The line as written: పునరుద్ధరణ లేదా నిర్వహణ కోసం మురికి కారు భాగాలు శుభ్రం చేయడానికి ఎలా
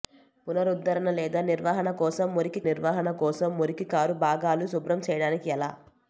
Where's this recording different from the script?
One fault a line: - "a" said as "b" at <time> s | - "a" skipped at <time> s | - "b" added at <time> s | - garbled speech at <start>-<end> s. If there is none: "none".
- "నిర్వహణ కోసం మురికి" added at 2.7 s